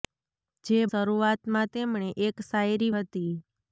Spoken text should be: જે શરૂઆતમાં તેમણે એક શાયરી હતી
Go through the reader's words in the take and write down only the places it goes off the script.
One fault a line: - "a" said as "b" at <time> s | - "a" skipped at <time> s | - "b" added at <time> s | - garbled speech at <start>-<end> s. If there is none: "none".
none